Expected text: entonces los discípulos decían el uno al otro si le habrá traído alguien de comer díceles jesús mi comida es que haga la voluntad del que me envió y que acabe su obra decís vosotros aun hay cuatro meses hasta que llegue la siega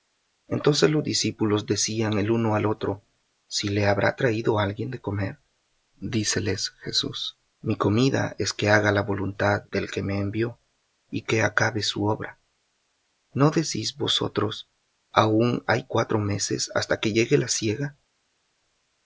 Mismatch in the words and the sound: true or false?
true